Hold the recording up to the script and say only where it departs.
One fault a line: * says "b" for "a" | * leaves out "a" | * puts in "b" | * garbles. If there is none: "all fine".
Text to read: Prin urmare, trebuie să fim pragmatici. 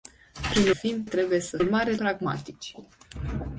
* says "fim" for "urmare"
* says "urmare" for "fim"